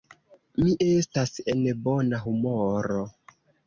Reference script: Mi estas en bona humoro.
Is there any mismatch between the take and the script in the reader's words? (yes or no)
no